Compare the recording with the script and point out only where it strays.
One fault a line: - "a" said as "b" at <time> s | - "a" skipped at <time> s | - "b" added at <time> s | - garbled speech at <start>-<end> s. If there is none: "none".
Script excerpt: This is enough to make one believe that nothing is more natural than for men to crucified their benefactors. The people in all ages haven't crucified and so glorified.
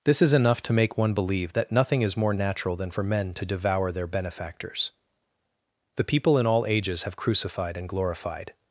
- "crucified" said as "devour" at 3.5 s
- "haven't" said as "have" at 7.0 s
- "so" skipped at 7.9 s